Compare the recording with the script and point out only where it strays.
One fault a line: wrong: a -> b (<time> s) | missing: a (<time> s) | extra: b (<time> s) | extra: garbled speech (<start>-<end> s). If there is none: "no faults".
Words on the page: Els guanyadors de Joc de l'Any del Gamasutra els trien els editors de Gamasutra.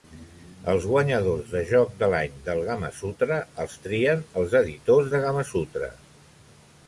no faults